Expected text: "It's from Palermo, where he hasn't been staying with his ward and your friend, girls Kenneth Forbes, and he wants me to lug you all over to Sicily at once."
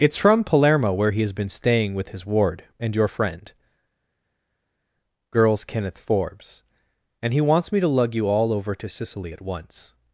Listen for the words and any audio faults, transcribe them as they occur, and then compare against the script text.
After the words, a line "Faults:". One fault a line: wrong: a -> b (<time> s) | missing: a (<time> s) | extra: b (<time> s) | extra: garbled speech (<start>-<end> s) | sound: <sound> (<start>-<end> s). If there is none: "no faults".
"It's from Palermo, where he has been staying with his ward and your friend, girls Kenneth Forbes, and he wants me to lug you all over to Sicily at once."
Faults:
wrong: hasn't -> has (1.2 s)